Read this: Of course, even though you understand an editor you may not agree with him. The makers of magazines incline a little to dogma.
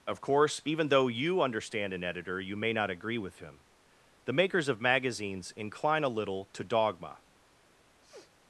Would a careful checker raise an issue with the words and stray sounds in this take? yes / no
yes